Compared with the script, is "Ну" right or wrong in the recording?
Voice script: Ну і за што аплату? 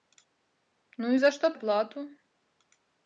right